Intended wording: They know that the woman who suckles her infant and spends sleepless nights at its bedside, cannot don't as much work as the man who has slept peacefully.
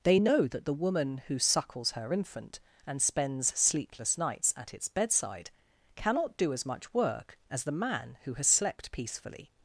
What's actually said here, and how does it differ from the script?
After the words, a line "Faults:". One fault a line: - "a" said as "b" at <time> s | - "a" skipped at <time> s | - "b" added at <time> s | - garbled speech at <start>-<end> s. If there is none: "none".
They know that the woman who suckles her infant and spends sleepless nights at its bedside, cannot do as much work as the man who has slept peacefully.
Faults:
- "don't" said as "do" at 6.4 s